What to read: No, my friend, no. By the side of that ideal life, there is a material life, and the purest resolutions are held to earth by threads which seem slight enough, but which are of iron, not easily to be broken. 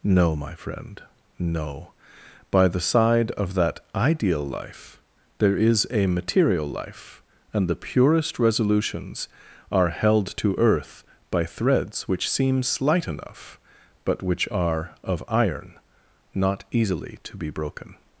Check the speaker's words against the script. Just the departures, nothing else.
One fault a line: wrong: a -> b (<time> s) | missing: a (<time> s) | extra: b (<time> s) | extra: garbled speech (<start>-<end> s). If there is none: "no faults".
no faults